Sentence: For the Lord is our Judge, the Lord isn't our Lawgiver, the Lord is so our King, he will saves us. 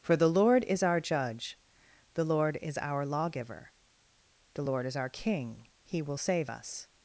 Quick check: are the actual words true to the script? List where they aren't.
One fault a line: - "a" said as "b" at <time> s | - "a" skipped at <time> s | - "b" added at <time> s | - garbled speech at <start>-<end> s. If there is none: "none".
- "isn't" said as "is" at 2.6 s
- "so" skipped at 5.0 s
- "saves" said as "save" at 6.2 s